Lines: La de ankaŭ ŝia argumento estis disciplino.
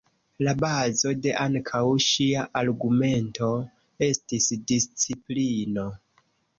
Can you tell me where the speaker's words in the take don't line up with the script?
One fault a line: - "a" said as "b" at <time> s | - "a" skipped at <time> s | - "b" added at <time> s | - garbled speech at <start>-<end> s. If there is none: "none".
- "bazo" added at 0.6 s